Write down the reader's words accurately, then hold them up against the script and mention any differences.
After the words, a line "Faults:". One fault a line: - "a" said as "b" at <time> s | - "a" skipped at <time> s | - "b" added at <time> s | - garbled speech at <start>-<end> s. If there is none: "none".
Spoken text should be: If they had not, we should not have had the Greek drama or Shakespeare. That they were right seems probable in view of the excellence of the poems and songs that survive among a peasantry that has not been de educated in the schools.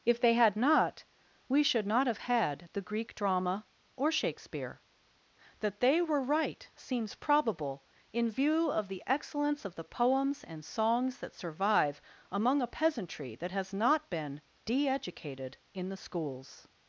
If they had not, we should not have had the Greek drama or Shakespeare. That they were right seems probable in view of the excellence of the poems and songs that survive among a peasantry that has not been de educated in the schools.
Faults:
none